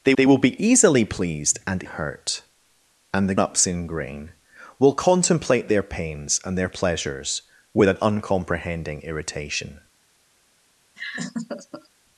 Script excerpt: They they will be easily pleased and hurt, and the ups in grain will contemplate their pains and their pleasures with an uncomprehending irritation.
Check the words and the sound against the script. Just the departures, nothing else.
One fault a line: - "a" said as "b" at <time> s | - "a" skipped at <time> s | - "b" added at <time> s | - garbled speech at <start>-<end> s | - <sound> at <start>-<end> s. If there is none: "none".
- laugh at 11.0-11.9 s